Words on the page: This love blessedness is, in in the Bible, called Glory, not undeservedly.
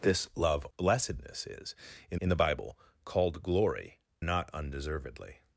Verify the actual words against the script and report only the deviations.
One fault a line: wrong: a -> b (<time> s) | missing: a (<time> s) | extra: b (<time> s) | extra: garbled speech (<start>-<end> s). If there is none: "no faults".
no faults